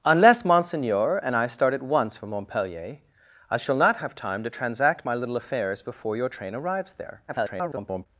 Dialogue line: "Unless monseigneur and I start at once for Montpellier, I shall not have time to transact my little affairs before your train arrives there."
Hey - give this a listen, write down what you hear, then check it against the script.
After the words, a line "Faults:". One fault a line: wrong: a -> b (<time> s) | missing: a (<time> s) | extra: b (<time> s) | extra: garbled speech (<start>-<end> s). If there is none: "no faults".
"Unless monseigneur and I start at once for Montpellier, I shall not have time to transact my little affairs before your train arrives there." [garbled]
Faults:
extra: garbled speech (7.3-8.1 s)